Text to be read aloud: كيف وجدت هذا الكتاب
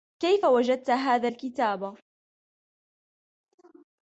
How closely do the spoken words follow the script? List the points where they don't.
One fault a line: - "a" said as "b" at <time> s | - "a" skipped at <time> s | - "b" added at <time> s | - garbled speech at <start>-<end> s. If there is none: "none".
none